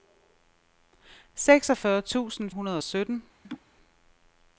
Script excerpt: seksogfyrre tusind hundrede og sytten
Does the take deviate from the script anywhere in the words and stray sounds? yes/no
yes